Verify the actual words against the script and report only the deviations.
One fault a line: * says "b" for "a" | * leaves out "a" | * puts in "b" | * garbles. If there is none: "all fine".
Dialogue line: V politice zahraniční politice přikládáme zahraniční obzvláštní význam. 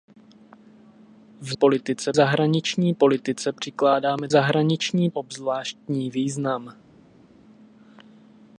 all fine